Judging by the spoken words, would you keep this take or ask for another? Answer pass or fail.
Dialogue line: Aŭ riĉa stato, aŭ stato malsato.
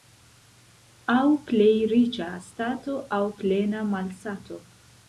fail